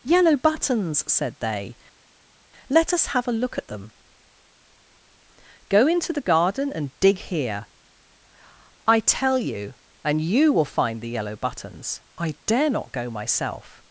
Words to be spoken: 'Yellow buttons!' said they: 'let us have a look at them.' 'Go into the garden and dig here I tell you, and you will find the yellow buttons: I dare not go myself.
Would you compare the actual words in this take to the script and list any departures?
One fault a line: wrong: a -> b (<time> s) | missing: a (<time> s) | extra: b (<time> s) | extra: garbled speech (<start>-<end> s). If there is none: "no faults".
no faults